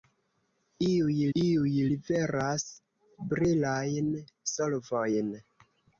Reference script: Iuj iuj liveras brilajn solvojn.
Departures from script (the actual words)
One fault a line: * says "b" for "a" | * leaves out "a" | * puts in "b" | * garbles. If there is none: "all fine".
all fine